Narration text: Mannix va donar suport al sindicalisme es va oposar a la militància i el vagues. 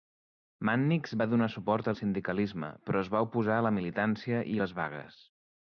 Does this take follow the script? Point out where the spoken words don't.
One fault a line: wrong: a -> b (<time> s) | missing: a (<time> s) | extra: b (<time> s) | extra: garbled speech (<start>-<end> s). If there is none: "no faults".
extra: però (2.9 s)
wrong: el -> les (4.6 s)